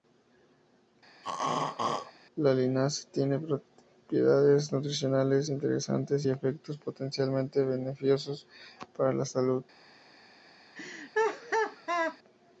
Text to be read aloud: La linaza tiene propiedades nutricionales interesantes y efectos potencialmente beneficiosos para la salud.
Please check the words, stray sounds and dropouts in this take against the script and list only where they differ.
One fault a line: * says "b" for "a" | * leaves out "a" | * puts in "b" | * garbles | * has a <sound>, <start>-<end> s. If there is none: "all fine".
* has a throat clearing, 1.2-2.1 s
* has a laugh, 10.7-12.2 s